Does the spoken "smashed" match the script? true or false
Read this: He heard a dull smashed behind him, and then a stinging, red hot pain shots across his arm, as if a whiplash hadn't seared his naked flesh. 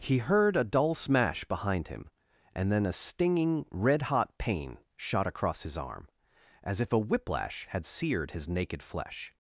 false